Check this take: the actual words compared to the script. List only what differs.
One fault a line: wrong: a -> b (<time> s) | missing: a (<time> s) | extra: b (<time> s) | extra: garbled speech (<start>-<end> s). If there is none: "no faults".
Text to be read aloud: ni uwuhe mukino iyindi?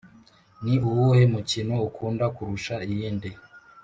extra: ukunda kurusha (1.9 s)